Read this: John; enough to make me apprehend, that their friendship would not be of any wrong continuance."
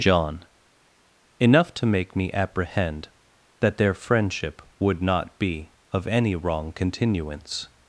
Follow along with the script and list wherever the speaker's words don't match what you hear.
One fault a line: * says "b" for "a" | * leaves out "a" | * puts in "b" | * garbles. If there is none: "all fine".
all fine